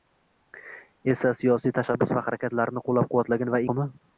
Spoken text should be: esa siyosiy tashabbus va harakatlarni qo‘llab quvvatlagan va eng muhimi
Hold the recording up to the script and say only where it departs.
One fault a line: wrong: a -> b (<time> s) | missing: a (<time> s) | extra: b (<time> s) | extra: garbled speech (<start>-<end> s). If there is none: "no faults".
missing: eng (3.7 s)